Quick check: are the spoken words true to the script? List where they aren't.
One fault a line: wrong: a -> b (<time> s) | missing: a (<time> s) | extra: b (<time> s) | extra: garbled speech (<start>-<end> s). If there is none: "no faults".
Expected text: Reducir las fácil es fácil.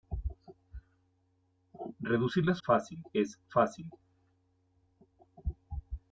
no faults